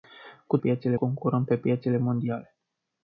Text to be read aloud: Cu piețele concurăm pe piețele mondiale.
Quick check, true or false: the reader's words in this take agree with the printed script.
true